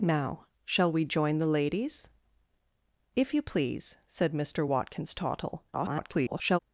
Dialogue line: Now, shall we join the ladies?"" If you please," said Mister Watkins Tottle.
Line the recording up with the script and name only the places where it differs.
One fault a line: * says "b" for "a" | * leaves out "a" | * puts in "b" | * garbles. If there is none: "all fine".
* garbles